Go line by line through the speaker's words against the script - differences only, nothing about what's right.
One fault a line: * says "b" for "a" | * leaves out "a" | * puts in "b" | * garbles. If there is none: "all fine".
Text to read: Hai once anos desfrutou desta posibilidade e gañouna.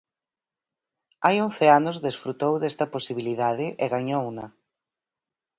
all fine